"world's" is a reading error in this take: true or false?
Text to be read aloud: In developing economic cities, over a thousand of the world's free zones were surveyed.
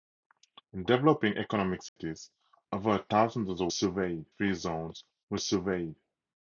true